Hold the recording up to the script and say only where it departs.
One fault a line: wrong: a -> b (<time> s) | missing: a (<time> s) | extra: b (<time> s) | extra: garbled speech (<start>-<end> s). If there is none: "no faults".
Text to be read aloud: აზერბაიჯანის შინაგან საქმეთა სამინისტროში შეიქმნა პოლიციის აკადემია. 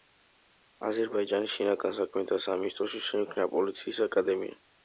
no faults